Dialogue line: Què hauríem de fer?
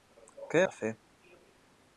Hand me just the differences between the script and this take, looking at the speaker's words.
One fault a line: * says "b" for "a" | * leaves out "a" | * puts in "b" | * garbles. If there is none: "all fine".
* leaves out "hauríem"